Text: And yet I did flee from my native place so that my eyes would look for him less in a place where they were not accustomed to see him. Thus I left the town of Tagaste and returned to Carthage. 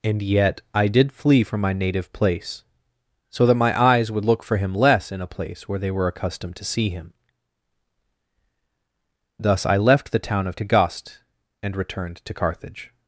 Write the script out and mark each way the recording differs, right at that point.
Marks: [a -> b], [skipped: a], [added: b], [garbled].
And yet I did flee from my native place so that my eyes would look for him less in a place where they were [skipped: not] accustomed to see him. Thus I left the town of Tagaste and returned to Carthage.